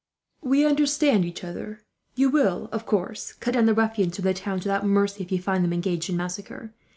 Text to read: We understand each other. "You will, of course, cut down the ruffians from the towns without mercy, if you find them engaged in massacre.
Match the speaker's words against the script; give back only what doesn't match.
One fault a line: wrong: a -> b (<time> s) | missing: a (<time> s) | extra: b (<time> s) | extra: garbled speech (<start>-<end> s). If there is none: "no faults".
no faults